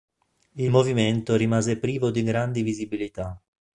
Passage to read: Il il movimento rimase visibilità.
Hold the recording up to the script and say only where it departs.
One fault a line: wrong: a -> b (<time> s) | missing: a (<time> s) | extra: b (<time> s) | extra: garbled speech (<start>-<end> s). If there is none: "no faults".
missing: il (0.7 s)
extra: privo di grandi (1.8 s)